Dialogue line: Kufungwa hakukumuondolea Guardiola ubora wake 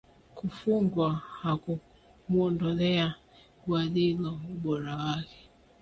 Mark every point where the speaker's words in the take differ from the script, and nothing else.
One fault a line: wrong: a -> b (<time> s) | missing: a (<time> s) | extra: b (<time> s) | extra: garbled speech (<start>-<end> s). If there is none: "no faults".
no faults